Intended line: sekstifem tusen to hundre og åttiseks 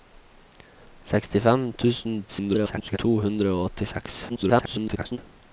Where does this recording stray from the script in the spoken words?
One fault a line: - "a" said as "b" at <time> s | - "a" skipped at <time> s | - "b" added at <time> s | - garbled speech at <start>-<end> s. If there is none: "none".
- garbled speech at 2.3-3.0 s
- garbled speech at 4.3-5.2 s